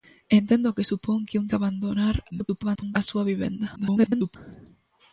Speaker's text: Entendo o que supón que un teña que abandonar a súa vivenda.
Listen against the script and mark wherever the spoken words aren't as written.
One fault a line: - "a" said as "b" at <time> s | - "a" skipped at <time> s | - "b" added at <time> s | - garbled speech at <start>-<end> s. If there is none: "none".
- "teña" skipped at 1.5 s
- garbled speech at 2.3-3.0 s
- garbled speech at 3.8-4.4 s